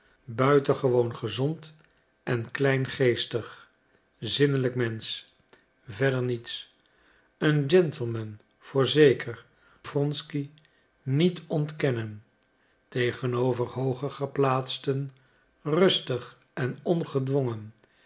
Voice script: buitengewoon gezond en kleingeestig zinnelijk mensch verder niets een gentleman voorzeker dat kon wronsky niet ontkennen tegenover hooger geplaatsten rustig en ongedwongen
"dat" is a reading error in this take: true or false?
true